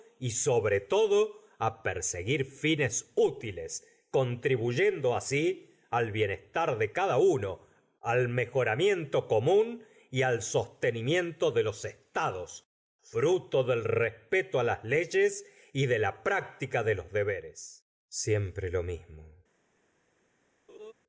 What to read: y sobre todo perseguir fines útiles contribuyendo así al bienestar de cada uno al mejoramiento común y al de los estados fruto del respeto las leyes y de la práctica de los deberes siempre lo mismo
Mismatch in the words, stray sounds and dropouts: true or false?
true